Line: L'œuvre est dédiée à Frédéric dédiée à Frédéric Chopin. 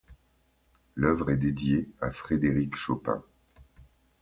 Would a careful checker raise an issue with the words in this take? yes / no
yes